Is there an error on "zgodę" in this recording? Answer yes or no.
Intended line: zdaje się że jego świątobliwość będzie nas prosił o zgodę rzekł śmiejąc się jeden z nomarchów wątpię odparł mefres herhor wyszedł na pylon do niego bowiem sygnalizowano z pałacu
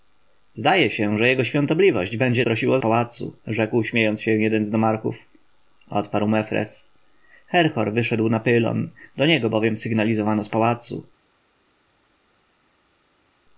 yes